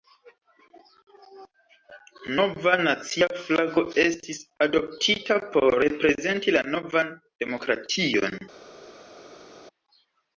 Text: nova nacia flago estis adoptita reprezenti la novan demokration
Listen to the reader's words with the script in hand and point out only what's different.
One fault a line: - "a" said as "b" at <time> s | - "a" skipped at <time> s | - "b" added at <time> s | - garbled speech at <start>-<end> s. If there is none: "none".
- "por" added at 5.6 s